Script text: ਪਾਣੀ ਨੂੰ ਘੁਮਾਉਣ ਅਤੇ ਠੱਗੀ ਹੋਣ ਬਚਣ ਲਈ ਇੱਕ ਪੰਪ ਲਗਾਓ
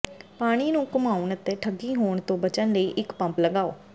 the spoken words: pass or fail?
fail